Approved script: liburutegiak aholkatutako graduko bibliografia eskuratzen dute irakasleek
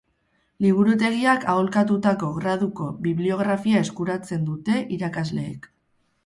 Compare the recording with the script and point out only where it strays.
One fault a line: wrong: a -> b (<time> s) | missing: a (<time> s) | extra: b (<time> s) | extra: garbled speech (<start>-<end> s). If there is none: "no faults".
no faults